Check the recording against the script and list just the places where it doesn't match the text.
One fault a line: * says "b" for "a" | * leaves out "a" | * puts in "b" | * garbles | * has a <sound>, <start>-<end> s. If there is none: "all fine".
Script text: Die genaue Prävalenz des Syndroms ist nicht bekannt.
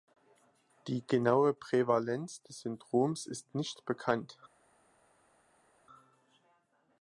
all fine